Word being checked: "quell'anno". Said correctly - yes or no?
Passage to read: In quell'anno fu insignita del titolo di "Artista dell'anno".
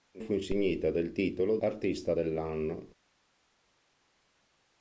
no